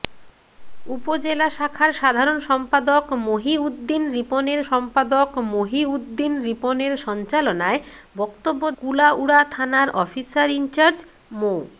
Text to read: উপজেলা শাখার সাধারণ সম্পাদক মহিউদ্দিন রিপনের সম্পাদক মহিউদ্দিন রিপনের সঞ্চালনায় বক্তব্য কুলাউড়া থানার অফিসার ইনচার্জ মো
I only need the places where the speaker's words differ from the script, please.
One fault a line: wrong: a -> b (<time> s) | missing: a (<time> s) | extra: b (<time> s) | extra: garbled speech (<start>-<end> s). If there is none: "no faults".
no faults